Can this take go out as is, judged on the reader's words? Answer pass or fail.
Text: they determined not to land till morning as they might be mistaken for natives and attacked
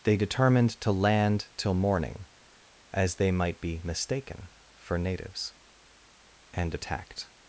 fail